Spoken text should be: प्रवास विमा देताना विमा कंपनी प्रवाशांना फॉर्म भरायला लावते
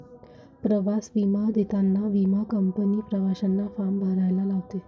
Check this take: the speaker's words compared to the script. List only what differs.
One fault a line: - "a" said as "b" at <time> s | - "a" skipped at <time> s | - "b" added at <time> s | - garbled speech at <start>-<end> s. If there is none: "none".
none